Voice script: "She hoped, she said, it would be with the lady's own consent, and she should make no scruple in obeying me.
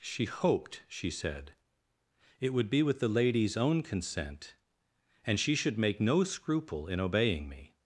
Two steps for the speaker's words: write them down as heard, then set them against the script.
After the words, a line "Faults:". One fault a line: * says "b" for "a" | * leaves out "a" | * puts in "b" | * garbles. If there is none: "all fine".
"She hoped, she said, it would be with the lady's own consent, and she should make no scruple in obeying me.
Faults:
all fine